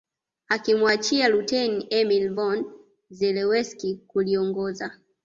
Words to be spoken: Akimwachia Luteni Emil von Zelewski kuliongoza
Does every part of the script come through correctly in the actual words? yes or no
yes